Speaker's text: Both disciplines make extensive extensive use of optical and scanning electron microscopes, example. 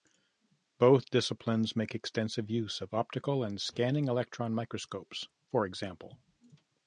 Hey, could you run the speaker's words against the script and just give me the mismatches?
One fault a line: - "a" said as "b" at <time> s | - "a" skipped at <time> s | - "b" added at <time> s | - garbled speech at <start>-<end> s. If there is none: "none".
- "extensive" skipped at 2.5 s
- "for" added at 5.5 s